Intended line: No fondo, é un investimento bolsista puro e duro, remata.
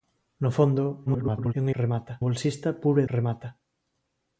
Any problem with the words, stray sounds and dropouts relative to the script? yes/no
yes